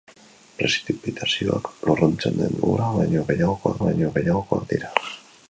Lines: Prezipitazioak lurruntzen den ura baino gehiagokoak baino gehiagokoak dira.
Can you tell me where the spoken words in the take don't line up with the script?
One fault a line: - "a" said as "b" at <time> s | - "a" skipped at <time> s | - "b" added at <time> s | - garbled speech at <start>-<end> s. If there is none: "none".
none